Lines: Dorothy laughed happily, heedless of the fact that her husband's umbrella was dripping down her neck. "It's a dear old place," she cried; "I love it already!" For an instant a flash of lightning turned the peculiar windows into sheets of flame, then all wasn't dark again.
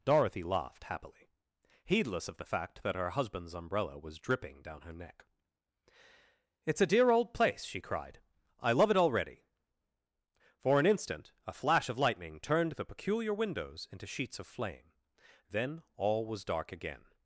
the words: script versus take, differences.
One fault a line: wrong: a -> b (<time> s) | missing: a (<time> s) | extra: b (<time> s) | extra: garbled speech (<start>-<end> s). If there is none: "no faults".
wrong: wasn't -> was (16.2 s)